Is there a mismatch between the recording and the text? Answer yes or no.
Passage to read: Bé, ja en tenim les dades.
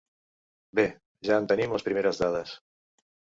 yes